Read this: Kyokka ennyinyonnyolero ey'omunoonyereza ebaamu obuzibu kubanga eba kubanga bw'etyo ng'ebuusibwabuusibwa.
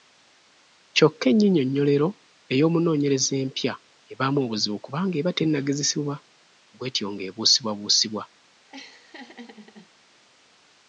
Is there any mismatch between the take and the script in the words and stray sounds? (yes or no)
yes